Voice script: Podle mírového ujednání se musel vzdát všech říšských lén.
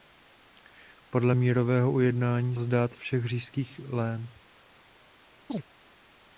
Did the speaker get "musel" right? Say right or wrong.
wrong